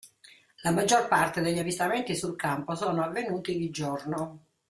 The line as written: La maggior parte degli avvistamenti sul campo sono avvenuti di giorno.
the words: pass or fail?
pass